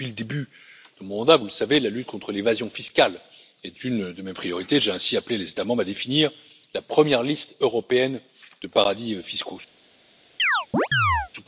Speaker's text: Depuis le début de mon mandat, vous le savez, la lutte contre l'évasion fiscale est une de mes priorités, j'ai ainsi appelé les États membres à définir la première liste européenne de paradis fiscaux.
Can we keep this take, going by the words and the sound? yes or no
no